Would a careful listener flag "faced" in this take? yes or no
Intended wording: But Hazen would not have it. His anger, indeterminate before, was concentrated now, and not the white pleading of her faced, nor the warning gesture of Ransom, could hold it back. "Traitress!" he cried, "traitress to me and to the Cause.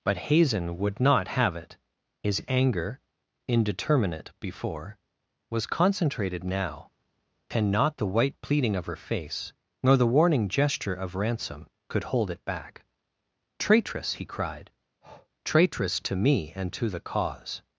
yes